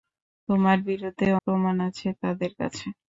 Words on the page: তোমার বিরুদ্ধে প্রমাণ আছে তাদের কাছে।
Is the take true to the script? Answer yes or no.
yes